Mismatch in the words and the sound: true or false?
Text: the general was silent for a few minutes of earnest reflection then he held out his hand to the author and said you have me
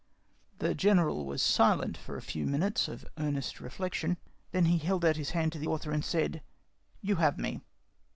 false